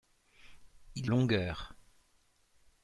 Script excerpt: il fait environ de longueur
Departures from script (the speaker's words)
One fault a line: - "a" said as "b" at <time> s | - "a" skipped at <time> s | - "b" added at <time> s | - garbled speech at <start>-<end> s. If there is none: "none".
- "fait environ de" skipped at 1.1 s